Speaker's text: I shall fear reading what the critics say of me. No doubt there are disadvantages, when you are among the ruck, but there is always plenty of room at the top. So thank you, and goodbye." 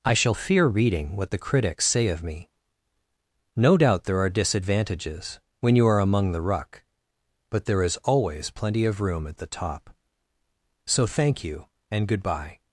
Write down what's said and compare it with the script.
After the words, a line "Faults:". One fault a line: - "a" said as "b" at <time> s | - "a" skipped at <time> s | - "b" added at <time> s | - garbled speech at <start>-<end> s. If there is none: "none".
I shall fear reading what the critics say of me. No doubt there are disadvantages, when you are among the ruck, but there is always plenty of room at the top. So thank you, and goodbye."
Faults:
none